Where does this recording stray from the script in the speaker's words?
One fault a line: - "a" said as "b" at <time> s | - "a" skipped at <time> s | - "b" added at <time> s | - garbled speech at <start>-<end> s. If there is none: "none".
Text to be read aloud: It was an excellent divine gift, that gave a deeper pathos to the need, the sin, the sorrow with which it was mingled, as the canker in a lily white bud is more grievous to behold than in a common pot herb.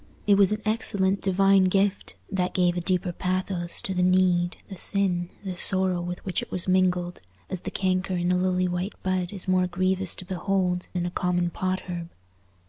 - "than" skipped at 10.9 s